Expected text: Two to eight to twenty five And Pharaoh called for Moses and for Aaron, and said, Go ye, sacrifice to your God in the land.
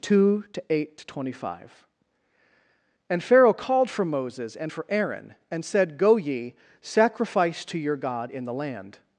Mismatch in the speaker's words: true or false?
false